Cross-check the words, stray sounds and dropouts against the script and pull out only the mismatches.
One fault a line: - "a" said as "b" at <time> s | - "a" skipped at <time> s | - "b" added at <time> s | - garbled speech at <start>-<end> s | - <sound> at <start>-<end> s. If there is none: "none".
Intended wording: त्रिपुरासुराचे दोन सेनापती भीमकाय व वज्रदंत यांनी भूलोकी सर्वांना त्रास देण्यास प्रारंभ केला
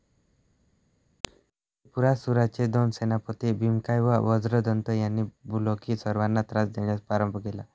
none